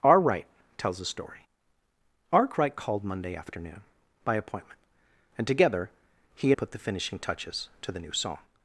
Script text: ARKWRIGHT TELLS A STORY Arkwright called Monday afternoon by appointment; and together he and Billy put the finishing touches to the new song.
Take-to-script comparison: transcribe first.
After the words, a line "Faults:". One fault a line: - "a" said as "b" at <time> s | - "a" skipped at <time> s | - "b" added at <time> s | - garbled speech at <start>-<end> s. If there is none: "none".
ARKWRIGHT TELLS A STORY Arkwright called Monday afternoon by appointment; and together he put the finishing touches to the new song.
Faults:
- "and Billy" skipped at 6.5 s